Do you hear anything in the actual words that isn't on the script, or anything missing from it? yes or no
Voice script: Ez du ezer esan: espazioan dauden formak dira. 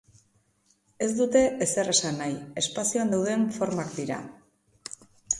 yes